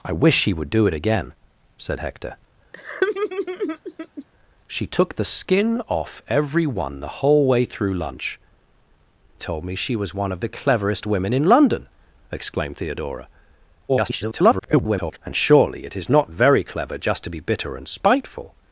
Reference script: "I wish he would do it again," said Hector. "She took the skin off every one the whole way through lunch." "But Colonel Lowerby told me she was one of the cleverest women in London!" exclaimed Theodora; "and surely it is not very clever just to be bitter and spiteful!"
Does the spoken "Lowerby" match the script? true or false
false